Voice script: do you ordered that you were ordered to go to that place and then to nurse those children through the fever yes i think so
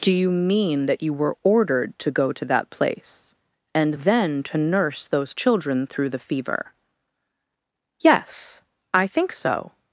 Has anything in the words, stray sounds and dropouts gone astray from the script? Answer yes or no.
yes